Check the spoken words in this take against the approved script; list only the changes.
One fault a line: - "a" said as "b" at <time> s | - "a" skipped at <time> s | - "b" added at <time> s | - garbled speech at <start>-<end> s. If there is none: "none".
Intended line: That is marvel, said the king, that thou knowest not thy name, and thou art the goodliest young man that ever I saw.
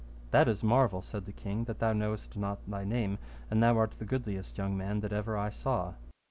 none